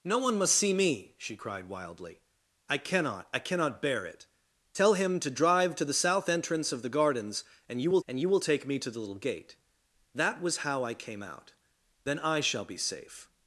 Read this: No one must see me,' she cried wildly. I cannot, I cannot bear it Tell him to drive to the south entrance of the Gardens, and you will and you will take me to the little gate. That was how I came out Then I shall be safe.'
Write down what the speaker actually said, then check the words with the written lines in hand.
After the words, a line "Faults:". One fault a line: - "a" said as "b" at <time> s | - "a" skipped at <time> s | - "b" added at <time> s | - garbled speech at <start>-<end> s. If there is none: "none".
No one must see me,' she cried wildly. I cannot, I cannot bear it Tell him to drive to the south entrance of the Gardens, and you will and you will take me to the little gate. That was how I came out Then I shall be safe.'
Faults:
none